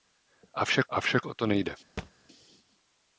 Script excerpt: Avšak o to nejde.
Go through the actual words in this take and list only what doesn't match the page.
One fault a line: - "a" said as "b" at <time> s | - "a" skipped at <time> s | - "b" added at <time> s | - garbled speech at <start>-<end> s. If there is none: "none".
- "avšak" added at 0.9 s